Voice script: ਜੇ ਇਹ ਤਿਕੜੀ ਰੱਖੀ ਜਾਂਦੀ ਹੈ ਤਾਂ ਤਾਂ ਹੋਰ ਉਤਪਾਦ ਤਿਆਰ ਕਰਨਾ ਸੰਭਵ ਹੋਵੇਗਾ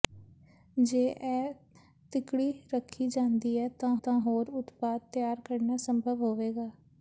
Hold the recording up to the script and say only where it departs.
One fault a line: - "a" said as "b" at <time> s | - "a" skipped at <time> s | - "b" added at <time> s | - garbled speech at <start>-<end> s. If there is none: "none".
none